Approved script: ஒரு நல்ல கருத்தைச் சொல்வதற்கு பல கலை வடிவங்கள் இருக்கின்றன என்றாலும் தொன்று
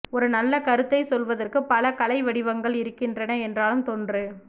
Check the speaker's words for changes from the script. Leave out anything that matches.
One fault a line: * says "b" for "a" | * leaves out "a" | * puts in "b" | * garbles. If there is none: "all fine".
all fine